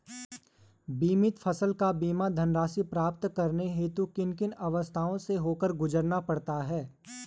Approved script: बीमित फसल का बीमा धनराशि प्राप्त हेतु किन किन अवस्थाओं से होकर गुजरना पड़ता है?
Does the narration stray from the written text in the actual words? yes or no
yes